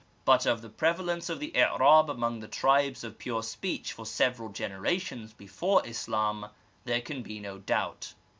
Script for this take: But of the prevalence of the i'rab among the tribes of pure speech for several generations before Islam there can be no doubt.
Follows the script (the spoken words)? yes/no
yes